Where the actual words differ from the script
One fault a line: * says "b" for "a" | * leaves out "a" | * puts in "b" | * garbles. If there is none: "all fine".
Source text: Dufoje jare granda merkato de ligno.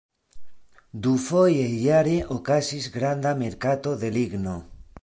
* puts in "okazis"